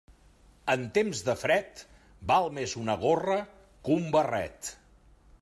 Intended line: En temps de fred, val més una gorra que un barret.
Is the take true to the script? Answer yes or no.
yes